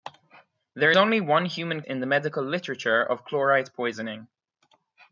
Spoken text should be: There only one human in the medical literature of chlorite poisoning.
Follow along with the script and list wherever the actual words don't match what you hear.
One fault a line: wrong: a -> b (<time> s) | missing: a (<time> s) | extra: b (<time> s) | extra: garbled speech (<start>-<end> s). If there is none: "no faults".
no faults